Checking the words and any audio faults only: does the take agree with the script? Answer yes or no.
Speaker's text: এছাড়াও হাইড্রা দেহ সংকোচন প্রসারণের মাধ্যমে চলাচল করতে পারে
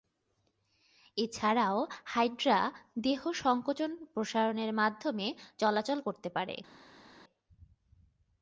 yes